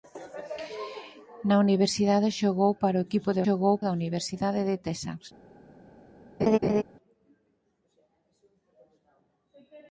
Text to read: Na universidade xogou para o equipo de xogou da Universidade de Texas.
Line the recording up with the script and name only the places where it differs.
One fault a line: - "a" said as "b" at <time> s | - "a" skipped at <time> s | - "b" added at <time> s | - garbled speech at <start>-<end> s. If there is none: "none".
none